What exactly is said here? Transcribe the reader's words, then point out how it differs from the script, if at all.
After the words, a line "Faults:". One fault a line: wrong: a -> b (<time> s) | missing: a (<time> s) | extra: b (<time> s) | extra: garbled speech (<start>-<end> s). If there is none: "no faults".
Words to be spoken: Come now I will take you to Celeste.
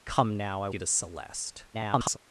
Come now I you to Celeste. [garbled]
Faults:
missing: will take (0.7 s)
extra: garbled speech (1.7-2.2 s)